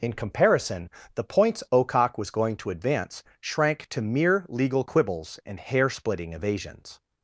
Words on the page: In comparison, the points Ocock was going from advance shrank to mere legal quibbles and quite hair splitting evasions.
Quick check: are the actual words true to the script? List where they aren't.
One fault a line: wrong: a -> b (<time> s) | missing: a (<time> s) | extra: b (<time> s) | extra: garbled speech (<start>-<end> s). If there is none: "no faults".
wrong: from -> to (2.5 s)
missing: quite (5.6 s)